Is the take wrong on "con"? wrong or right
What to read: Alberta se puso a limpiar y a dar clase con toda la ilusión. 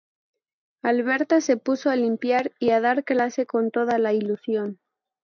right